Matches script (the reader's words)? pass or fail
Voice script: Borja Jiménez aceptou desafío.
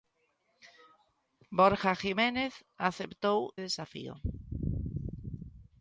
pass